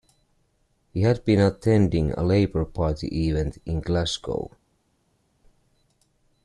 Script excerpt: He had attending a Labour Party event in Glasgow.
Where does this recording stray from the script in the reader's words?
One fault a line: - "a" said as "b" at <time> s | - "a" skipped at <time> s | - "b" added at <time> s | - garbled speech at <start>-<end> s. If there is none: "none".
- "been" added at 1.2 s